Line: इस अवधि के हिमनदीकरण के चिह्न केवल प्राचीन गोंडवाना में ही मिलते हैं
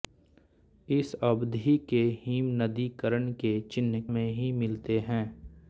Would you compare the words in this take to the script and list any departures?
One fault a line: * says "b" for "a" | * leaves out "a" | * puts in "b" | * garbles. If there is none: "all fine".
* leaves out "केवल प्राचीन गोंडवाना"